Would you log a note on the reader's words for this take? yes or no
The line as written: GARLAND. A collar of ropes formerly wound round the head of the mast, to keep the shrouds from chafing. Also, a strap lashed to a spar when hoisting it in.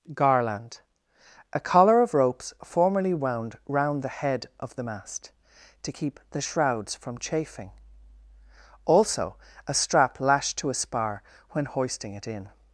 no